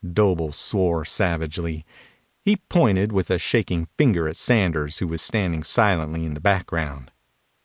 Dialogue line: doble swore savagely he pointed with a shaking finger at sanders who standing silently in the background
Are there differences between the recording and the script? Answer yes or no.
yes